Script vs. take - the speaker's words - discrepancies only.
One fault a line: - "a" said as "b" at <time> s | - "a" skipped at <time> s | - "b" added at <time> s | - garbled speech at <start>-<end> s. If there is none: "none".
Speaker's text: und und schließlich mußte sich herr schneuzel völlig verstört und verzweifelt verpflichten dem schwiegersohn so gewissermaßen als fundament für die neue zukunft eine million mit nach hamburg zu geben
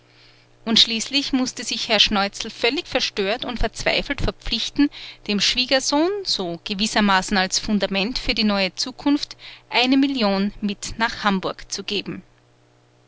- "und" skipped at 0.8 s